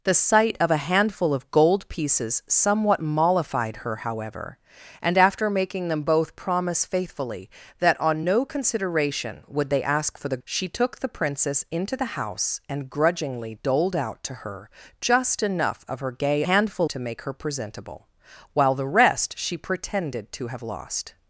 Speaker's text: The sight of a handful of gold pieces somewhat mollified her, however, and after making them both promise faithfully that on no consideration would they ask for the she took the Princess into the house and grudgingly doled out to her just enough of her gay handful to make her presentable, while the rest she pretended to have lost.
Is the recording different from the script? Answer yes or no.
no